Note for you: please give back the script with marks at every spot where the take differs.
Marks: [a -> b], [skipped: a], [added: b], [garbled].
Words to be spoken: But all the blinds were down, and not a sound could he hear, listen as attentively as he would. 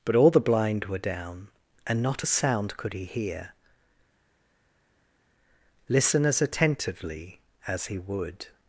But all the [blinds -> blind] were down, and not a sound could he hear, listen as attentively as he would.